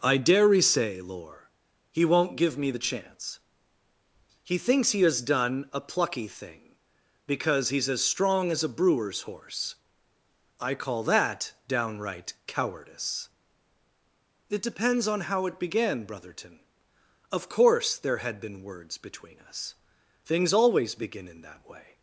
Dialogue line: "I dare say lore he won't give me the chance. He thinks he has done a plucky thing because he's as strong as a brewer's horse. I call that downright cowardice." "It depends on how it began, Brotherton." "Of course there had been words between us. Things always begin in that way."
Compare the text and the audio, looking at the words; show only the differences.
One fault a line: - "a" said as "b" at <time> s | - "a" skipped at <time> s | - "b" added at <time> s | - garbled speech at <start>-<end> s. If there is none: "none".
none